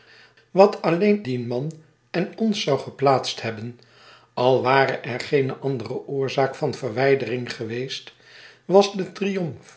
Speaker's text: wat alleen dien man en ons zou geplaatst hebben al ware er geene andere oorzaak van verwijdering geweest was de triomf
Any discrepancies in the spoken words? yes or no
no